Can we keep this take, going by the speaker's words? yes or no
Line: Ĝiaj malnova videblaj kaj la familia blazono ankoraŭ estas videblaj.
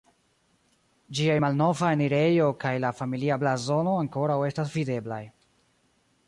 no